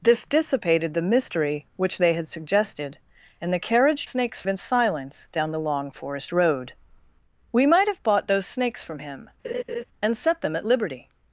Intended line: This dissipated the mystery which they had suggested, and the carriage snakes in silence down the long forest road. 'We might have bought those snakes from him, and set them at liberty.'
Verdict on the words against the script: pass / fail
pass